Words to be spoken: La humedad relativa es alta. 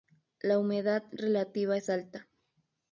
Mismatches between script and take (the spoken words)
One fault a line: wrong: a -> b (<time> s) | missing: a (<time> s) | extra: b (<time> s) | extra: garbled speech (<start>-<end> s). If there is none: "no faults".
no faults